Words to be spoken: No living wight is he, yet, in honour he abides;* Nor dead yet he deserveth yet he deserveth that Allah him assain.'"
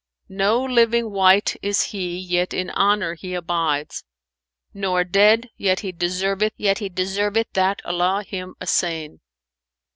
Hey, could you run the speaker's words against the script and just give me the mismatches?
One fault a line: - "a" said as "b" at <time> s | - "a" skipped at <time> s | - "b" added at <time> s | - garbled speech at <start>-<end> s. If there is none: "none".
none